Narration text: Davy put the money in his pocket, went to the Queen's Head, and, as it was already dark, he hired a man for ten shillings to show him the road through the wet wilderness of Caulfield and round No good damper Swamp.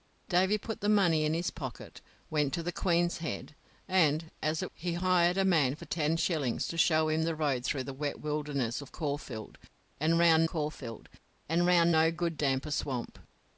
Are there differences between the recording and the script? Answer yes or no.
yes